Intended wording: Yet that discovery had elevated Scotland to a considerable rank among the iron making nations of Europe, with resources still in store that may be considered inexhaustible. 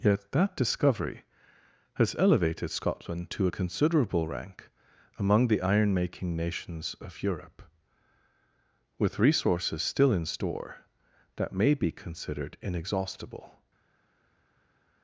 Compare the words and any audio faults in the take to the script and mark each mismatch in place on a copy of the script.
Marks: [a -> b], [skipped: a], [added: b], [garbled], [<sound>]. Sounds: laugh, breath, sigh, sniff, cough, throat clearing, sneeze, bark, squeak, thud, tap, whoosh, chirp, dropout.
Yet that discovery [had -> has] elevated Scotland to a considerable rank among the iron making nations of Europe, with resources still in store that may be considered inexhaustible.